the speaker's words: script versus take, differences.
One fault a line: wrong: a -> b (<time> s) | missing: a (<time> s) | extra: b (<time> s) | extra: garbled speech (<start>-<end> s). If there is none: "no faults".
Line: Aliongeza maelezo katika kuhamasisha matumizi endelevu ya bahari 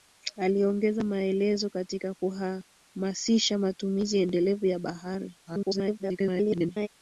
extra: garbled speech (5.5-6.9 s)